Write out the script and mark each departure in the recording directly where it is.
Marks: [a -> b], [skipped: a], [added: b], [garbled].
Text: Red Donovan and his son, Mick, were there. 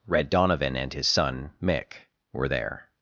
Red Donovan and his son, Mick, were there.